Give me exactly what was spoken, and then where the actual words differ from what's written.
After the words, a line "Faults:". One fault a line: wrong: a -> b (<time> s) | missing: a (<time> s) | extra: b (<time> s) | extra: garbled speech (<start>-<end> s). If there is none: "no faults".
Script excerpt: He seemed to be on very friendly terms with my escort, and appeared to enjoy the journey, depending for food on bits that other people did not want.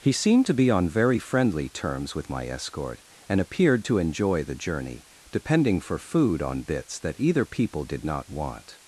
He seemed to be on very friendly terms with my escort, and appeared to enjoy the journey, depending for food on bits that either people did not want.
Faults:
wrong: other -> either (7.2 s)